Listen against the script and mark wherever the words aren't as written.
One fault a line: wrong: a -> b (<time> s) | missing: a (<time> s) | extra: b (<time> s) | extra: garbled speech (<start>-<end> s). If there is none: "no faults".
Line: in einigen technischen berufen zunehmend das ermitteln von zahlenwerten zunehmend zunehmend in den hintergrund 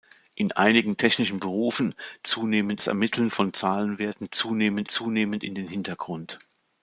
no faults